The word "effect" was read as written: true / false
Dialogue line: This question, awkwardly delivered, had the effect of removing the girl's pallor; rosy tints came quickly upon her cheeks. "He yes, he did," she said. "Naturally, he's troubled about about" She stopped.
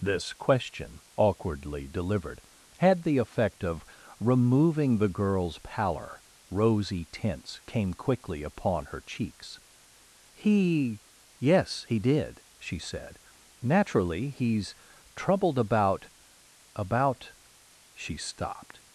true